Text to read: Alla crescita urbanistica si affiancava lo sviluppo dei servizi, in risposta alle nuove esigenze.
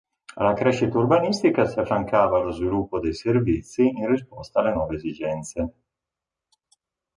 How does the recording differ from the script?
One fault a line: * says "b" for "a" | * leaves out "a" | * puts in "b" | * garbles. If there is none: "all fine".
all fine